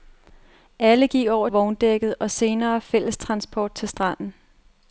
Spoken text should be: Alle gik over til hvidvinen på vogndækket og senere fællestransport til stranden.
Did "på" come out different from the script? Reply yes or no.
yes